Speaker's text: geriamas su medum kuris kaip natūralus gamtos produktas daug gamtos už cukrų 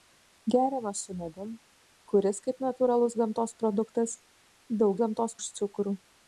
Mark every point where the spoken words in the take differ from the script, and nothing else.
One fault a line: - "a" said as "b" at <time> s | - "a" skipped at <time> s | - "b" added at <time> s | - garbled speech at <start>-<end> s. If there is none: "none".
none